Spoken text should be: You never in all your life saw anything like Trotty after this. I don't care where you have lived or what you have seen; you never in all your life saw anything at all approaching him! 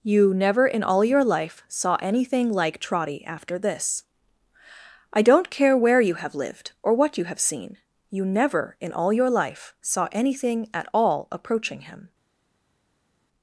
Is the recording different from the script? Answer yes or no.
no